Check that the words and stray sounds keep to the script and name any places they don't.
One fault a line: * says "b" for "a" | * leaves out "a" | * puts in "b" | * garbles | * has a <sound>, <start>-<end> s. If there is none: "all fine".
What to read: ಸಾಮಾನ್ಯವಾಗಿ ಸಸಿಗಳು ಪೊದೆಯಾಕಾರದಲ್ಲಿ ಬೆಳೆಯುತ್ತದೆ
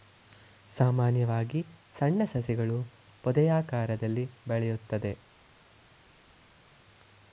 * puts in "ಸಣ್ಣ"